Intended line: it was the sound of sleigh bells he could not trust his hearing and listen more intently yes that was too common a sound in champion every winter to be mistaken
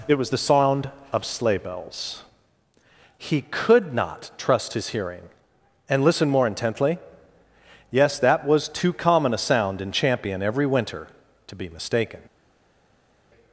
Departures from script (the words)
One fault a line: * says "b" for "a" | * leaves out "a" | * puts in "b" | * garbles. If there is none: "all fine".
all fine